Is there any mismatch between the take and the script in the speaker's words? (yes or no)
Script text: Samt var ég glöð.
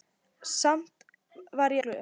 no